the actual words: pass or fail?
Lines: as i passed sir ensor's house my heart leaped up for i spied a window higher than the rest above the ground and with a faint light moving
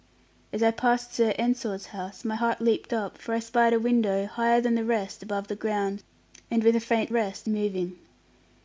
fail